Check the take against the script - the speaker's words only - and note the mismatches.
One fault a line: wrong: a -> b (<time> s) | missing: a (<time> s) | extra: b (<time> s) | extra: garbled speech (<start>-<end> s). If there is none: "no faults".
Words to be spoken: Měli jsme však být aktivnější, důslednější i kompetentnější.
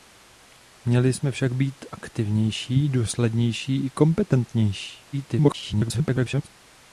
extra: garbled speech (5.1-6.5 s)